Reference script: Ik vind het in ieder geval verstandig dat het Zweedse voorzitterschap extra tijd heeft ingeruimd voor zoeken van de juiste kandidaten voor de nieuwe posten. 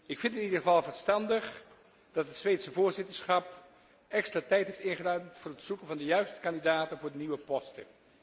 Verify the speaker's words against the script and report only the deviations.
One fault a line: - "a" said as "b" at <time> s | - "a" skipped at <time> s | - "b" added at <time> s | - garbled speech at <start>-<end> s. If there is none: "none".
- "het" added at 5.5 s